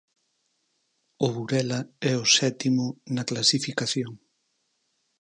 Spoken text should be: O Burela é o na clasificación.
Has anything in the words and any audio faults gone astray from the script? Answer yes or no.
yes